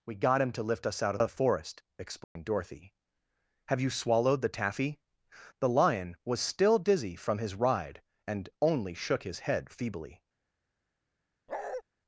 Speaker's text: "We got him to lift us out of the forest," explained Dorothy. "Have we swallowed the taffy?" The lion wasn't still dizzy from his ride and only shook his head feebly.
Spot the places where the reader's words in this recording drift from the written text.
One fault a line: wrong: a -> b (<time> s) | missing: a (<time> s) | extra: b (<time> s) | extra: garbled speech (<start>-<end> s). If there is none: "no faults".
wrong: we -> you (3.8 s)
wrong: wasn't -> was (6.2 s)